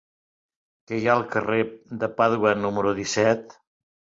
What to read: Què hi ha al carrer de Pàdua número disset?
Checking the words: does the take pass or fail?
pass